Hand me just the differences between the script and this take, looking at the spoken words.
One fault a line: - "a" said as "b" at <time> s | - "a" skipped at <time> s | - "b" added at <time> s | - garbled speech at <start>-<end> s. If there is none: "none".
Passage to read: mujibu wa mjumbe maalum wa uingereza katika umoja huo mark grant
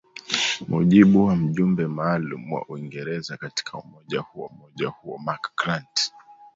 - "umoja huo" added at 4.4 s